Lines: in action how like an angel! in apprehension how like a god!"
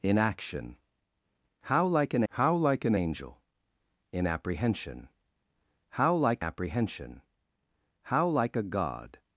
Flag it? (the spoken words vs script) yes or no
yes